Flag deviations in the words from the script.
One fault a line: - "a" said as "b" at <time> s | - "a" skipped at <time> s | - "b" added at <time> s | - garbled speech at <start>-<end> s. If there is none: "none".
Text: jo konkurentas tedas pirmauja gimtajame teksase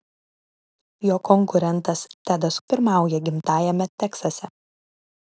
none